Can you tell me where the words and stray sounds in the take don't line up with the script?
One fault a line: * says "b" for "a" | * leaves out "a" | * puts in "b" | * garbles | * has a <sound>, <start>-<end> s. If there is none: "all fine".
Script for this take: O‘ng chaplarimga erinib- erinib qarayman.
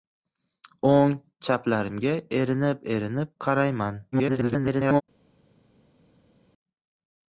* garbles